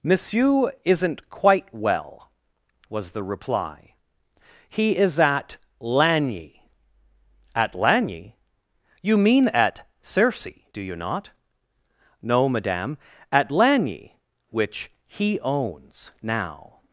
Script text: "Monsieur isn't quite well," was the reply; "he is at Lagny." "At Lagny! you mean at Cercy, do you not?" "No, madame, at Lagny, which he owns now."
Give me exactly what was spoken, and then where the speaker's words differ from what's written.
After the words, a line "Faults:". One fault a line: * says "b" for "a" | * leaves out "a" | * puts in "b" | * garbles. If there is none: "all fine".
"Monsieur isn't quite well," was the reply; "he is at Lagny." "At Lagny! you mean at Cercy, do you not?" "No, madame, at Lagny, which he owns now."
Faults:
all fine